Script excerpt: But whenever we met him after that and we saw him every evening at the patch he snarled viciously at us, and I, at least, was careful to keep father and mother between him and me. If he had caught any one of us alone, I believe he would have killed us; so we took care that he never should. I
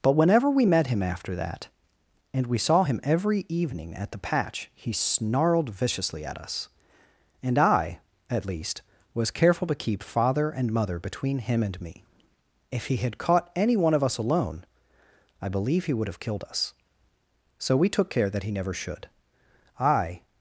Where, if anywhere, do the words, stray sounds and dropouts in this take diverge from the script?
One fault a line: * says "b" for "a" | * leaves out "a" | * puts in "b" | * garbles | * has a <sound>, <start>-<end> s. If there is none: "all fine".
all fine